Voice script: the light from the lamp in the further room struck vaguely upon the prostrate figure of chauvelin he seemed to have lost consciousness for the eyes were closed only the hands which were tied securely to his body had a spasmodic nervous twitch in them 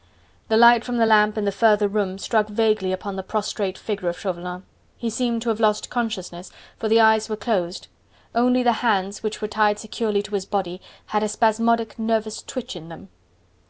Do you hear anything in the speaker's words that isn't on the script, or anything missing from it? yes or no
no